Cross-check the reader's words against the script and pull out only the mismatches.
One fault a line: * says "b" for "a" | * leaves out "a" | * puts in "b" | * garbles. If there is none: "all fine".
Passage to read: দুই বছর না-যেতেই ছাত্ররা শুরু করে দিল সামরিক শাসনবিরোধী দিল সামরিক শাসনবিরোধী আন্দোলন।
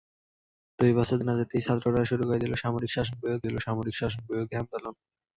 all fine